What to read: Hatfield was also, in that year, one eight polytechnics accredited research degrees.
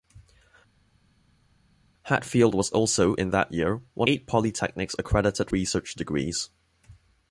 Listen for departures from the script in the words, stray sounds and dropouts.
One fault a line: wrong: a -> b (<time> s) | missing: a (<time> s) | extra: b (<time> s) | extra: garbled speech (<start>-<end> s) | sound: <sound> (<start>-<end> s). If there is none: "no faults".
no faults